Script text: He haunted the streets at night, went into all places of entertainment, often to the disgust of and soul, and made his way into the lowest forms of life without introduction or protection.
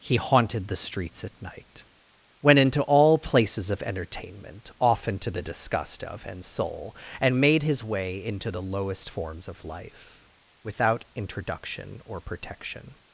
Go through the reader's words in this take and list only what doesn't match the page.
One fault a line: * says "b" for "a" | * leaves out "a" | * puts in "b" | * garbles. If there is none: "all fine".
all fine